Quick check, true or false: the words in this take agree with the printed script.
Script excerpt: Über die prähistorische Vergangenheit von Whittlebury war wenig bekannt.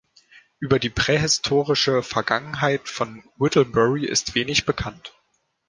false